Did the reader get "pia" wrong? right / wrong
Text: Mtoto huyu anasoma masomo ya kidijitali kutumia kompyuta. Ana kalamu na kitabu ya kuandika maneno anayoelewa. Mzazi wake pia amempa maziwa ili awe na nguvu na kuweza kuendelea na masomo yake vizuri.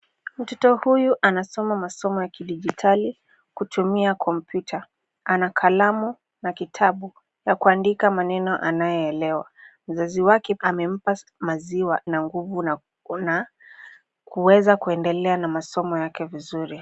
wrong